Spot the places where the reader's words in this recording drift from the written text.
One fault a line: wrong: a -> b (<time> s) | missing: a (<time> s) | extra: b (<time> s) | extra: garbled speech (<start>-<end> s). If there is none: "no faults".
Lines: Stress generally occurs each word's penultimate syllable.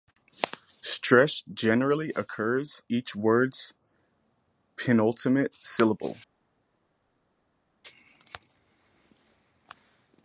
no faults